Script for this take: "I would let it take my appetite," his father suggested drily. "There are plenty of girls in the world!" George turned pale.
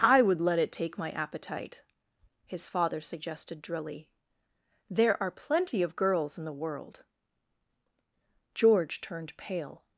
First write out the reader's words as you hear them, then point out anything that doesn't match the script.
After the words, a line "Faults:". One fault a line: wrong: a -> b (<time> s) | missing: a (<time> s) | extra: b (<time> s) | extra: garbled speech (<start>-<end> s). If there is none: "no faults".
"I would let it take my appetite," his father suggested drily. "There are plenty of girls in the world!" George turned pale.
Faults:
no faults